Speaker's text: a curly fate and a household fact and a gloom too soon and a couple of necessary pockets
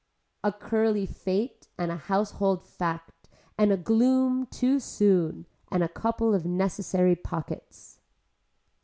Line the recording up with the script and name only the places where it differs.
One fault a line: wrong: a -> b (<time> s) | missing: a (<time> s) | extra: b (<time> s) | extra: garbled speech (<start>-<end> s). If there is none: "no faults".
no faults